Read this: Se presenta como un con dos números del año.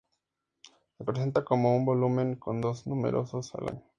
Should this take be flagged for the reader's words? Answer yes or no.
yes